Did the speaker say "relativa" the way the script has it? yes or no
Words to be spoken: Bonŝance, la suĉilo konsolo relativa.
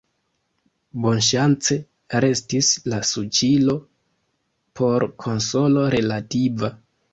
yes